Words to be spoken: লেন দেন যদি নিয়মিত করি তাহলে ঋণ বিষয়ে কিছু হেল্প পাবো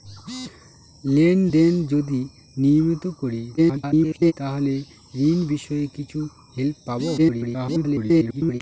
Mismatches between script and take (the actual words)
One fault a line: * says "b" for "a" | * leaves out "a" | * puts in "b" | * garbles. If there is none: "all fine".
* garbles
* garbles